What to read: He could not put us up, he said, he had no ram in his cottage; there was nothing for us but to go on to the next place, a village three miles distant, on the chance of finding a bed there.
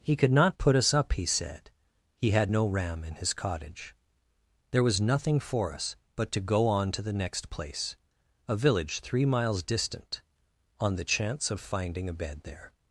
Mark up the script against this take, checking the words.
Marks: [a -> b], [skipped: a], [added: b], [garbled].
He could not put us up, he said, he had no ram in his cottage; there was nothing for us but to go on to the next place, a village three miles distant, on the chance of finding a bed there.